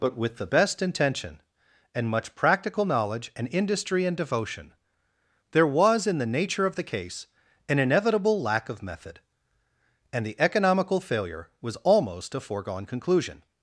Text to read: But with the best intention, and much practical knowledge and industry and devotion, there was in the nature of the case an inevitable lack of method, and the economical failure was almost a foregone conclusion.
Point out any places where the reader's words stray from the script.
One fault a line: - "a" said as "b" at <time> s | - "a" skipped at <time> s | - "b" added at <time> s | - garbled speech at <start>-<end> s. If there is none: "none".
none